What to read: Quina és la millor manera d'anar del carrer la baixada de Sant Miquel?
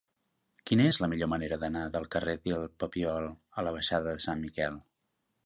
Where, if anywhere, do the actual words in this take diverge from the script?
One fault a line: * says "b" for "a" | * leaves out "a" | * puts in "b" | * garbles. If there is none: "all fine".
* puts in "del Papiol a"